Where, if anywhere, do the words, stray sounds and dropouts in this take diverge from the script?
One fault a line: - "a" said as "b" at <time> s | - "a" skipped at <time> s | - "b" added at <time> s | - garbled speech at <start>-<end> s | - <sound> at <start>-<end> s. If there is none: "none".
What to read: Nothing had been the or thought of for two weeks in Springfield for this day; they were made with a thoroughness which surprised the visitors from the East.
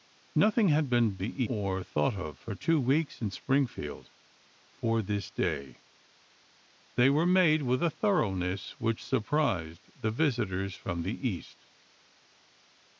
none